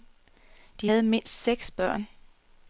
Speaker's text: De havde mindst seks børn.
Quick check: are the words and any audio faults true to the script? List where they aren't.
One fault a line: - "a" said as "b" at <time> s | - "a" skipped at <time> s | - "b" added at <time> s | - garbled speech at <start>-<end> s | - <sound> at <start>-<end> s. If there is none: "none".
none